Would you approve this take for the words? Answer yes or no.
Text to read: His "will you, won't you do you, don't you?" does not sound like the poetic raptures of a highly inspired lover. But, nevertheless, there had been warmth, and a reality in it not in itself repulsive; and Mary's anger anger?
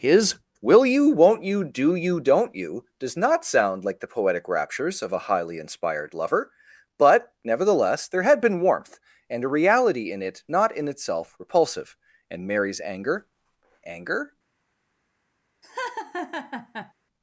yes